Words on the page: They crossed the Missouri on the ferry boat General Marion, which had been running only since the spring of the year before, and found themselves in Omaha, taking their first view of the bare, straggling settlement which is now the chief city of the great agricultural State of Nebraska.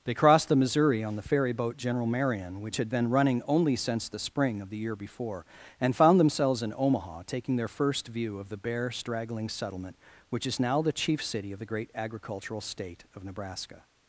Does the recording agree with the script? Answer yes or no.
yes